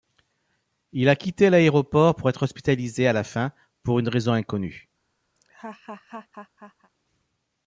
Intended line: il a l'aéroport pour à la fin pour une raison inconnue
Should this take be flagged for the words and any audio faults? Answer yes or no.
yes